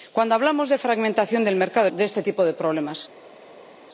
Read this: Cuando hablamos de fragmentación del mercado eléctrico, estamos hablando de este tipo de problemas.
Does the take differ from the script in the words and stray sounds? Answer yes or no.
yes